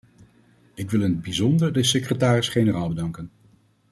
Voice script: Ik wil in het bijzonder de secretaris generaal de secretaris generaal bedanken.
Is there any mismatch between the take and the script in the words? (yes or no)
yes